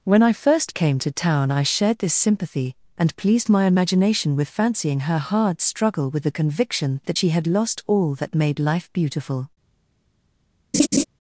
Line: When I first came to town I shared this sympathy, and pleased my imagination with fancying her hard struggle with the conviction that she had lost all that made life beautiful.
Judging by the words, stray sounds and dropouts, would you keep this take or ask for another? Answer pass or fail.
fail